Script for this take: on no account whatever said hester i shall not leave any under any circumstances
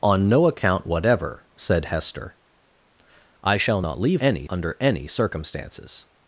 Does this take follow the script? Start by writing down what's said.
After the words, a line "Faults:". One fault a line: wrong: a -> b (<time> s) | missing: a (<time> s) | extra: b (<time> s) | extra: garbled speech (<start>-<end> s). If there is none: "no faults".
on no account whatever said hester i shall not leave any under any circumstances
Faults:
no faults